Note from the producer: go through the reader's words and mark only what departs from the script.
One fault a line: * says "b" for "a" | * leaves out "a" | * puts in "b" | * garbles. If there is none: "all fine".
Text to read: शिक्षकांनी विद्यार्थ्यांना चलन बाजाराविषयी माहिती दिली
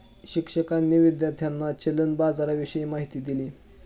all fine